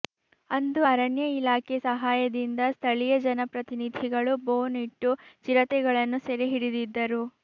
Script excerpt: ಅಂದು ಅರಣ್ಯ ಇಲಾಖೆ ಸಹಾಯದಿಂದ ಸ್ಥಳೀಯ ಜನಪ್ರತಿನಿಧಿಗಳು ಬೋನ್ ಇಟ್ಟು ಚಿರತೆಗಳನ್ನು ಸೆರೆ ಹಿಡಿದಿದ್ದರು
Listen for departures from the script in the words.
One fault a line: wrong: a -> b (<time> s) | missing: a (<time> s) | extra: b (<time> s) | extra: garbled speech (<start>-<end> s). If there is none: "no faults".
no faults